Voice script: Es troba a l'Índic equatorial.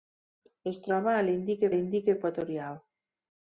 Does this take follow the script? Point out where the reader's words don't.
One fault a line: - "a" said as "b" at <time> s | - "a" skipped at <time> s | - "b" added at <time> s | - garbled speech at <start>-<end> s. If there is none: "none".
- "l'Índic" added at 1.7 s